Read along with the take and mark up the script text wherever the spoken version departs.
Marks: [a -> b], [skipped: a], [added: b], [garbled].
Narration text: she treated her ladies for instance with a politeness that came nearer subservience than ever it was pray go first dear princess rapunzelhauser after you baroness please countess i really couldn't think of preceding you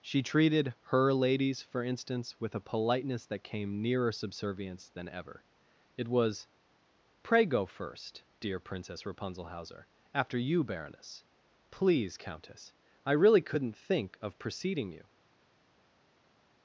she treated her ladies for instance with a politeness that came nearer subservience than ever it was pray go first dear princess rapunzelhauser after you baroness please countess i really couldn't think of preceding you